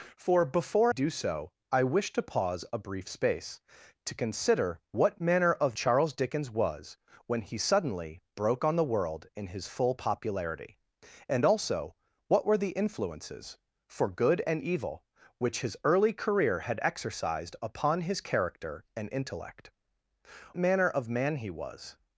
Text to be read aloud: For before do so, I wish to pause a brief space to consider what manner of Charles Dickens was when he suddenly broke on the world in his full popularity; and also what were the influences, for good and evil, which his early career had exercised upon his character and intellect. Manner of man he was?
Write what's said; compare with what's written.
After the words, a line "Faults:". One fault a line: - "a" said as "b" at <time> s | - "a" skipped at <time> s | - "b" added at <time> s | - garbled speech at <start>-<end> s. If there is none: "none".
For before do so, I wish to pause a brief space to consider what manner of Charles Dickens was when he suddenly broke on the world in his full popularity; and also what were the influences, for good and evil, which his early career had exercised upon his character and intellect. Manner of man he was?
Faults:
none